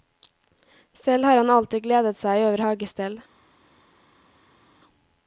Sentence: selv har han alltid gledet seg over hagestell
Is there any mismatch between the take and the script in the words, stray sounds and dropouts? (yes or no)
no